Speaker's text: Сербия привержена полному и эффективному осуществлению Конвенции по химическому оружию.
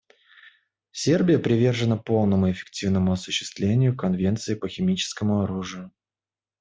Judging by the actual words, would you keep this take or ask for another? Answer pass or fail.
pass